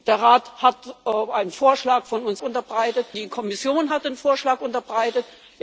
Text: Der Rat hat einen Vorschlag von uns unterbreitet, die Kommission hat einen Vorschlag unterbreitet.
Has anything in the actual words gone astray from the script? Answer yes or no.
no